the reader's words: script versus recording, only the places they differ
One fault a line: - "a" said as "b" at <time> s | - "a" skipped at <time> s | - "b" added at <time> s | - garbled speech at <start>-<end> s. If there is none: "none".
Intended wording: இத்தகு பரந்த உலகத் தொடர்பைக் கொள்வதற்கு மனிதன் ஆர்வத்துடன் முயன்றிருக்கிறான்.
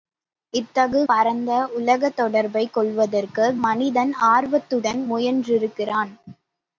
none